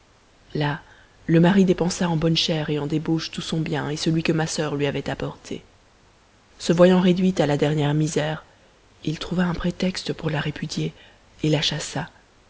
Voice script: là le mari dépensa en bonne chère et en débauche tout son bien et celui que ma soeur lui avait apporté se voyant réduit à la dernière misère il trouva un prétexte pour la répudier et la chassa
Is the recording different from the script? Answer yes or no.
no